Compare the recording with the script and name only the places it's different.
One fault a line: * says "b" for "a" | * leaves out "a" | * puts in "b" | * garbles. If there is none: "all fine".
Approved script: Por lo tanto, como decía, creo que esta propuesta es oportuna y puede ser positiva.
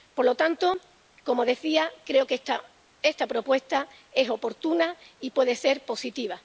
all fine